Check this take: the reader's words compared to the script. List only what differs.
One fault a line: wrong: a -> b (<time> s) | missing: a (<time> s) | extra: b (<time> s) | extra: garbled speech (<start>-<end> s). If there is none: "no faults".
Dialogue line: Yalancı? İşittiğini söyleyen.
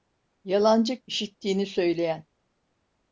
no faults